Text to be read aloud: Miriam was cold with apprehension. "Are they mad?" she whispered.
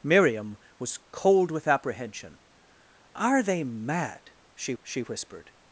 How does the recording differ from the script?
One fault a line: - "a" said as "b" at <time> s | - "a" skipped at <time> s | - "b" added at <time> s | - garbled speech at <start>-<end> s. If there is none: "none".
- "she" added at 4.8 s